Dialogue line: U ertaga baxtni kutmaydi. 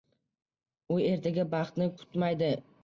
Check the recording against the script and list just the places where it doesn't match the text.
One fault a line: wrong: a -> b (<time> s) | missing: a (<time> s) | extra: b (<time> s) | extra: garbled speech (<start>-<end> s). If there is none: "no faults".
no faults